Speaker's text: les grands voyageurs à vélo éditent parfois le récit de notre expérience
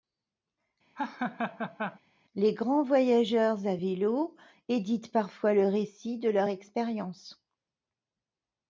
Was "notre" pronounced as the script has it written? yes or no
no